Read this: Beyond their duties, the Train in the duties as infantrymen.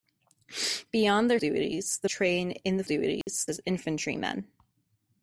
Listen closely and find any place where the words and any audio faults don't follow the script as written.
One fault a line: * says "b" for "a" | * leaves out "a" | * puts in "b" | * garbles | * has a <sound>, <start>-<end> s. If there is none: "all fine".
* has a dropout, 3.2-3.3 s